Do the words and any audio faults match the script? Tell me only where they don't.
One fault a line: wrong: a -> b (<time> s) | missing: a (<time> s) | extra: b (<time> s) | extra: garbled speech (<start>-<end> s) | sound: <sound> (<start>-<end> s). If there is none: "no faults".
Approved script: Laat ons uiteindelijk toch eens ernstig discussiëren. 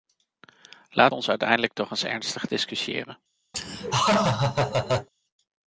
sound: laugh (3.5-5.1 s)